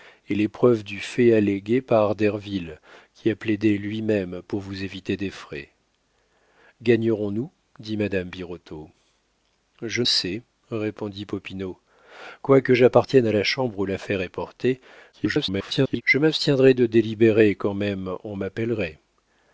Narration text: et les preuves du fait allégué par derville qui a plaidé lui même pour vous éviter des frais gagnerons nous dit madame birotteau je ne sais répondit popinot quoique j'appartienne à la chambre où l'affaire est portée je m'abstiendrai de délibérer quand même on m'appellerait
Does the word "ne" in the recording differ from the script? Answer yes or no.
yes